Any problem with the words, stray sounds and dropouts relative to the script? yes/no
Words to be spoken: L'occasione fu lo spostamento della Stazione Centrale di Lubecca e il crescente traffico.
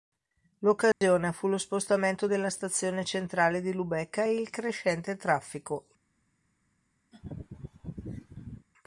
yes